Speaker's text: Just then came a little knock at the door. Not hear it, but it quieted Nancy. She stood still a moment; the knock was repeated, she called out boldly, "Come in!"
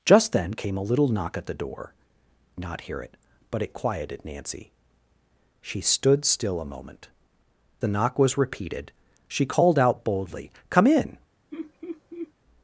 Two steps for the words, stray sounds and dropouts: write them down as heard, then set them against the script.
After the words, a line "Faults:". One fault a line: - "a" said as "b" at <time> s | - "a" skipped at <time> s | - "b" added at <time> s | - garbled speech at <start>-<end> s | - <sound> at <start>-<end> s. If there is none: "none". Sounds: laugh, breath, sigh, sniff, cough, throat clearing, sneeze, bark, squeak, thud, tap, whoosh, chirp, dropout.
Just then came a little knock at the door. Not hear it, but it quieted Nancy. She stood still a moment; the knock was repeated, she called out boldly, "Come in!"
Faults:
- laugh at 11.5-12.3 s